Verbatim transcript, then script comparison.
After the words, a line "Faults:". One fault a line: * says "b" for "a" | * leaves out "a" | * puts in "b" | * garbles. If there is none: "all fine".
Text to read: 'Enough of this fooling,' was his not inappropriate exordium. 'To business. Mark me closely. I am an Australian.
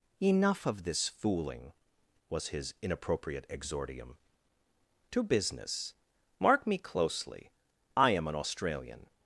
'Enough of this fooling,' was his inappropriate exordium. 'To business. Mark me closely. I am an Australian.
Faults:
* leaves out "not"